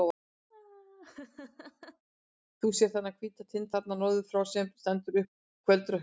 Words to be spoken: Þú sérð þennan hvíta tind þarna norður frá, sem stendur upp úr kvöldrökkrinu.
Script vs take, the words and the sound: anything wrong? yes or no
yes